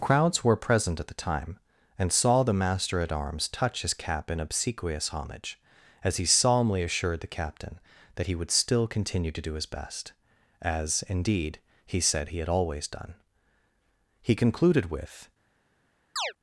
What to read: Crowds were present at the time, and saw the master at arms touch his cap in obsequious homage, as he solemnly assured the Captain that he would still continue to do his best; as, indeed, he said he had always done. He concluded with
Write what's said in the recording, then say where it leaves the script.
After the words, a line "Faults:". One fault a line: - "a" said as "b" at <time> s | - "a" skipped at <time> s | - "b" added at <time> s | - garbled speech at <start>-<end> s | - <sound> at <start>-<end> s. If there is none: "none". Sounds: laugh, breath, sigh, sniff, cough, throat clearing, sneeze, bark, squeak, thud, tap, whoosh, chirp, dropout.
Crowds were present at the time, and saw the master at arms touch his cap in obsequious homage, as he solemnly assured the Captain that he would still continue to do his best; as, indeed, he said he had always done. He concluded with
Faults:
- chirp at 16.2-16.3 s